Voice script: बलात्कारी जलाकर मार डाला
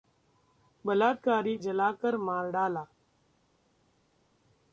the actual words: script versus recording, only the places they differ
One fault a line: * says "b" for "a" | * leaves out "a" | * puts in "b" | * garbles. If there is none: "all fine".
all fine